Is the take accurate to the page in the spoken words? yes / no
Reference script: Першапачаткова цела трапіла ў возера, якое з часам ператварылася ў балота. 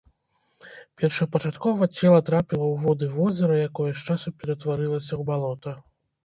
no